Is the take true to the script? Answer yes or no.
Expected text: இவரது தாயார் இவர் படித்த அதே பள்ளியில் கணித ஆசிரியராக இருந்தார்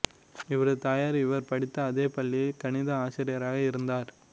yes